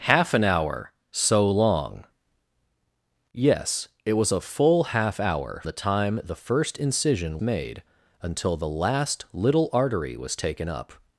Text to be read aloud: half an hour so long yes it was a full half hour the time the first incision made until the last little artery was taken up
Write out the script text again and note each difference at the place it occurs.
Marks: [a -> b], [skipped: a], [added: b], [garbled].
half an hour so long yes it was a full half hour the time the first incision made until the last little artery was taken up